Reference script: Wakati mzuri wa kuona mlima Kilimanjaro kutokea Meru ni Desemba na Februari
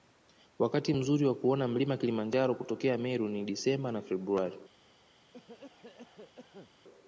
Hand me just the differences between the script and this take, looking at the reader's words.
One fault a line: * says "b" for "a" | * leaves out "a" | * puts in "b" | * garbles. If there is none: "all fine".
all fine